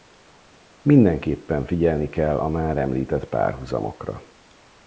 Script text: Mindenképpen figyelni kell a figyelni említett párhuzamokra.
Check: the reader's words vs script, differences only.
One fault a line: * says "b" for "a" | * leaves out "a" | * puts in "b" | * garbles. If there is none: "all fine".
* says "már" for "figyelni"